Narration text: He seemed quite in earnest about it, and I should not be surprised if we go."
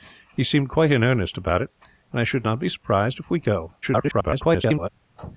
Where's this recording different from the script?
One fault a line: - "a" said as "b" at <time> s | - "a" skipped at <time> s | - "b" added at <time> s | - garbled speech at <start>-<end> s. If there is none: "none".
- garbled speech at 3.8-4.9 s